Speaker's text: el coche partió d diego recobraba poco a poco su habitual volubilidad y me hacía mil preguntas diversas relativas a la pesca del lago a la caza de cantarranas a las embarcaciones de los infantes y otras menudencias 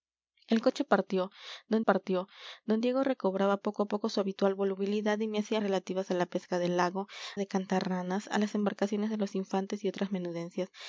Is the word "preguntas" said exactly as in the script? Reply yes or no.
no